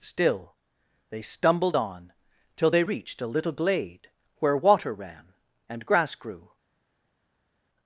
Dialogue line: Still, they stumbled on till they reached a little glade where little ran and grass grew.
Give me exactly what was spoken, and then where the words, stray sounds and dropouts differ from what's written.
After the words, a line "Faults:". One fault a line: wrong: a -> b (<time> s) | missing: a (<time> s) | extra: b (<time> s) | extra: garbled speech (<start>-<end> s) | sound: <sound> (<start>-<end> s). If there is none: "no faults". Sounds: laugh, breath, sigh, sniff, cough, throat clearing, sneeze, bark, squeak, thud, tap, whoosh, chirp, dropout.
Still, they stumbled on till they reached a little glade where water ran and grass grew.
Faults:
wrong: little -> water (4.6 s)